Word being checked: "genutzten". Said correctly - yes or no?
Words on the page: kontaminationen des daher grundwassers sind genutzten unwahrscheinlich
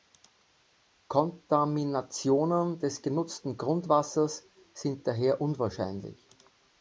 no